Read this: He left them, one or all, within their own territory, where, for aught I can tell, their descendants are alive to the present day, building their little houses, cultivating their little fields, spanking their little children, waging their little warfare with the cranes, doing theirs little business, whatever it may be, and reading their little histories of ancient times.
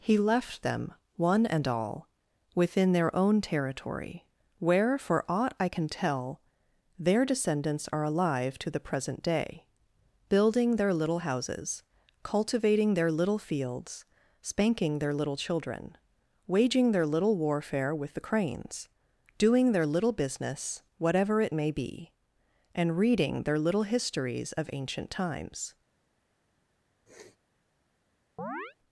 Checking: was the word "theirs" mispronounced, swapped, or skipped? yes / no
yes